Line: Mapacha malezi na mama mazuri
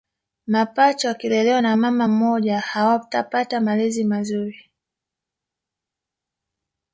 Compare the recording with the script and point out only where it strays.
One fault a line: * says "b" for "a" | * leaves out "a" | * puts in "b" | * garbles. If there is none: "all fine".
* says "wakilelewa" for "malezi"
* puts in "mmoja hawatapata malezi"